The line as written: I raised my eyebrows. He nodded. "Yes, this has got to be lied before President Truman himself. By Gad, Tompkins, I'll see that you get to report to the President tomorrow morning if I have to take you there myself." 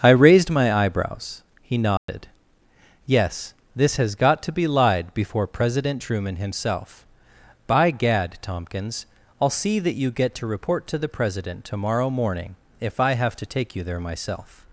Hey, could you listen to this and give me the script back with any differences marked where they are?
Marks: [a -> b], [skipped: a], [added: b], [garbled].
I raised my eyebrows. He nodded. "Yes, this has got to be lied before President Truman himself. By Gad, Tompkins, I'll see that you get to report to the President tomorrow morning if I have to take you there myself."